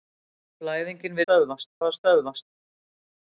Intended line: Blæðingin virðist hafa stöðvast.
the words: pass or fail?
fail